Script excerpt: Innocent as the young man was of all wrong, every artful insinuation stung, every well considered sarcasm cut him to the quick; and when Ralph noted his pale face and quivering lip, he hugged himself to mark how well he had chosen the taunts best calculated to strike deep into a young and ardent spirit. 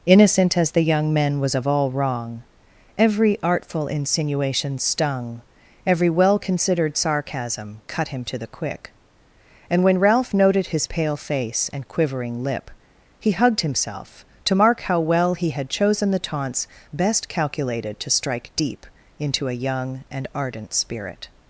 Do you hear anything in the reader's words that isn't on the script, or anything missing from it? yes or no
yes